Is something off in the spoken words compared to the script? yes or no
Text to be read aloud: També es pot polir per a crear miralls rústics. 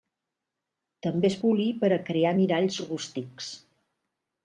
yes